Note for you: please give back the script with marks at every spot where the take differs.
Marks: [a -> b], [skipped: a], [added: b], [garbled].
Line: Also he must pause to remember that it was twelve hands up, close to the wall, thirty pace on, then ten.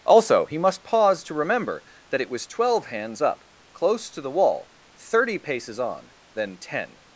Also he must pause to remember that it was twelve hands up, close to the wall, thirty [pace -> paces] on, then ten.